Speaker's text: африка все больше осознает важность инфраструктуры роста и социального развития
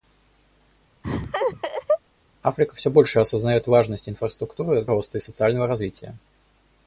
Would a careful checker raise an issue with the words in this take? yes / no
no